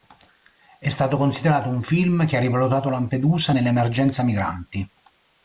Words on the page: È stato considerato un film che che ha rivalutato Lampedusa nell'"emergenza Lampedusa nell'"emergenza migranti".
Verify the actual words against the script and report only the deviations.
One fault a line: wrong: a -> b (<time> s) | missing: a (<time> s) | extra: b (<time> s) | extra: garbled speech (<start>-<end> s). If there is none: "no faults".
missing: che (2.4 s)
missing: Lampedusa nell'"emergenza (4.2 s)